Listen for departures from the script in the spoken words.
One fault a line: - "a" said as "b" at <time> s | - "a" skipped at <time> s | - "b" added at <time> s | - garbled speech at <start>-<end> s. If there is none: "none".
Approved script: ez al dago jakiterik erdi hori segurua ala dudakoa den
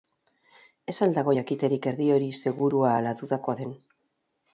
none